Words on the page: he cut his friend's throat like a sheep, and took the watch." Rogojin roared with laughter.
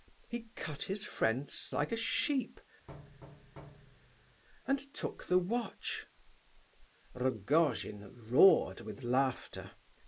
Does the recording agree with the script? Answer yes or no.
no